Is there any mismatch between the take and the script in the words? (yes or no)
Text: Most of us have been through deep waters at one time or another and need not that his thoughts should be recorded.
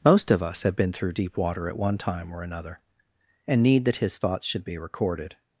yes